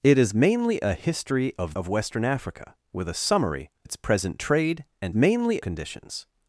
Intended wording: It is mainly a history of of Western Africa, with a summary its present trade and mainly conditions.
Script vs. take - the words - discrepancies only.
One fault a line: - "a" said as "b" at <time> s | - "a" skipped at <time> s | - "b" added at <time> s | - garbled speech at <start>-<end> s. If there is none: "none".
none